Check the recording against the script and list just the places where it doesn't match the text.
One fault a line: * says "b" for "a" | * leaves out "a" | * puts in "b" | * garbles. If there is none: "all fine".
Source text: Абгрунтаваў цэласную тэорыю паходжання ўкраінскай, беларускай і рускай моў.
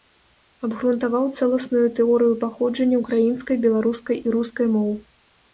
all fine